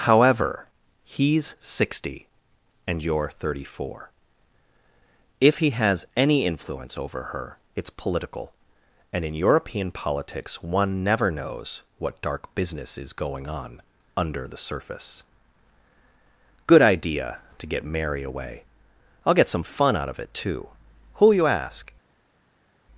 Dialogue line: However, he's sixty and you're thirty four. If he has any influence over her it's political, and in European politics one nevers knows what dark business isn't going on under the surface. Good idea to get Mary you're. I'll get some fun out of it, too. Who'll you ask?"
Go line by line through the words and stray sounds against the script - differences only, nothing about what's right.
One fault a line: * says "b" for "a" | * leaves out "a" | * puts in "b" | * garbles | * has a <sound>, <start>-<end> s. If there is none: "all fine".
* says "never" for "nevers"
* says "is" for "isn't"
* says "away" for "you're"